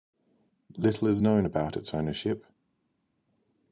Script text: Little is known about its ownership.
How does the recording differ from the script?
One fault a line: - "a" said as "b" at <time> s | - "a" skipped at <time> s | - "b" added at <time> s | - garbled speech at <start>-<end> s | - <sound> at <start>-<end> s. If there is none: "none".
none